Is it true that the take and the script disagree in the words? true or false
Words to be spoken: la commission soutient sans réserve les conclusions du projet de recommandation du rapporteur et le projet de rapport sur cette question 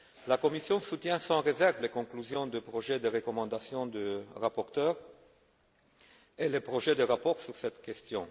false